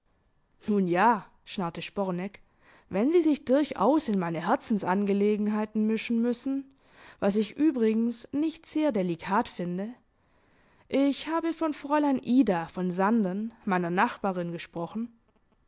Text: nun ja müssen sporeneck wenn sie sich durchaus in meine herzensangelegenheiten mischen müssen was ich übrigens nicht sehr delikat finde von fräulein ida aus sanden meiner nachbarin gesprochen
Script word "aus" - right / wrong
wrong